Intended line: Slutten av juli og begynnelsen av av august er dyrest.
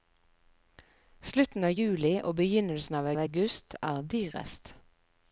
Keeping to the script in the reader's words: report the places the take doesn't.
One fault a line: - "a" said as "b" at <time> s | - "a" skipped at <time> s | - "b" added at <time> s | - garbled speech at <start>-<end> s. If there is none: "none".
none